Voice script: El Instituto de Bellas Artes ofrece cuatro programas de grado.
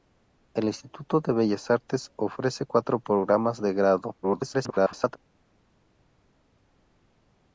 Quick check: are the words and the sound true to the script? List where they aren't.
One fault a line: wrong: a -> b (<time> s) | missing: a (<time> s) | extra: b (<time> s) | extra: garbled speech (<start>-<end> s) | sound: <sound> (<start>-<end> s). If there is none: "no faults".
extra: garbled speech (4.2-5.2 s)